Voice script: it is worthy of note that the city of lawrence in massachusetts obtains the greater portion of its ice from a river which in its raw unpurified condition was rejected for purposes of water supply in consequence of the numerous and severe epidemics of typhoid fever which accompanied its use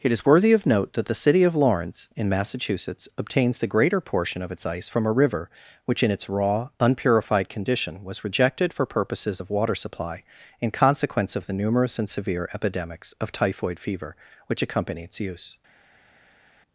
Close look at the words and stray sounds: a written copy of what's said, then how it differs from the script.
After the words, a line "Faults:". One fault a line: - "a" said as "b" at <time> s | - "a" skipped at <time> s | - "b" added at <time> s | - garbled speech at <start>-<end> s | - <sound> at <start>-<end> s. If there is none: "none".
it is worthy of note that the city of lawrence in massachusetts obtains the greater portion of its ice from a river which in its raw unpurified condition was rejected for purposes of water supply in consequence of the numerous and severe epidemics of typhoid fever which accompany its use
Faults:
- "accompanied" said as "accompany" at 14.6 s